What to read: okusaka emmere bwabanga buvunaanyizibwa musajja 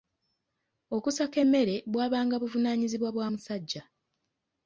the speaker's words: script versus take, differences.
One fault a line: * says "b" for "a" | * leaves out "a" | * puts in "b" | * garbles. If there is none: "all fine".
* puts in "bwa"